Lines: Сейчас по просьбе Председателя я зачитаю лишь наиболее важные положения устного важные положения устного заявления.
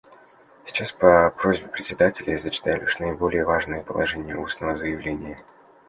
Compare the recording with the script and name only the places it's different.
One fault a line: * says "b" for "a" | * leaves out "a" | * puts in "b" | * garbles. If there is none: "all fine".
* leaves out "важные положения устного"